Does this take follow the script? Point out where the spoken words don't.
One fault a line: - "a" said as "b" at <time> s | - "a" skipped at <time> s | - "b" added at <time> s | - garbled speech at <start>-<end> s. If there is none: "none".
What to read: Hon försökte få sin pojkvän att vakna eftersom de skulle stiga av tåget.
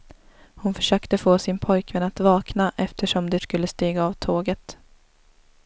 none